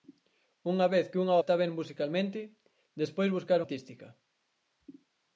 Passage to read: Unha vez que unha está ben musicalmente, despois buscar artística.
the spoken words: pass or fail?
pass